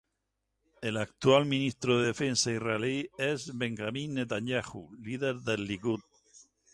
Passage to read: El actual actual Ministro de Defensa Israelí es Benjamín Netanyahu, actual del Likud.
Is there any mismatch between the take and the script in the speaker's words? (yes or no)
yes